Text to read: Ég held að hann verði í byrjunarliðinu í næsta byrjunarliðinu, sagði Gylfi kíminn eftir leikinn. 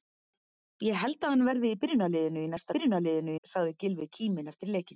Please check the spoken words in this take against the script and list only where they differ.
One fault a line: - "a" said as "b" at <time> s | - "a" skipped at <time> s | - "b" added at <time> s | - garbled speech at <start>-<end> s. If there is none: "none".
none